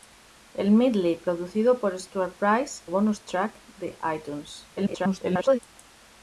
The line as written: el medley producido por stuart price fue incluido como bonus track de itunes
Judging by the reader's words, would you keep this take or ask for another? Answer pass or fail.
fail